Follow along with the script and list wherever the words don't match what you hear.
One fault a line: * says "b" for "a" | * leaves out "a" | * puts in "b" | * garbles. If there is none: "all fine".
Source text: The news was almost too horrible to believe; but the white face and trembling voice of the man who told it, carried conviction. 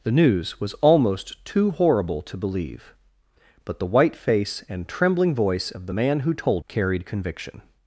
* leaves out "it"